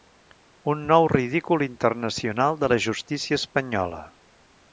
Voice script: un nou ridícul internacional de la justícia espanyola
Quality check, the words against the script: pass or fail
pass